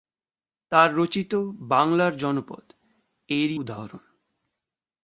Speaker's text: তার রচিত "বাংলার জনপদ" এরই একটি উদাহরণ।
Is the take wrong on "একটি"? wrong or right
wrong